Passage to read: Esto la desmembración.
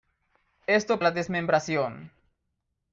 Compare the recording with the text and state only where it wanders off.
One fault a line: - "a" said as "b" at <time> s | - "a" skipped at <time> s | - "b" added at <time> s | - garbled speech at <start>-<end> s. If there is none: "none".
none